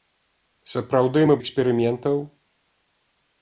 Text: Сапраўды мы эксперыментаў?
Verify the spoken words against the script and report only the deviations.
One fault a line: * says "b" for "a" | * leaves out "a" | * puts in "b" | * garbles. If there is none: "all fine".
all fine